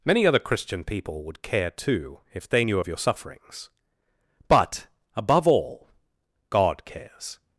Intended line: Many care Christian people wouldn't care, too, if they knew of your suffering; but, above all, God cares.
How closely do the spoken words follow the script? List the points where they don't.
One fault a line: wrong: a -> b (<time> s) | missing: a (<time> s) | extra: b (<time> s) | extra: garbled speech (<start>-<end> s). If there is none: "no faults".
wrong: care -> other (0.2 s)
wrong: wouldn't -> would (1.2 s)
wrong: suffering -> sufferings (3.0 s)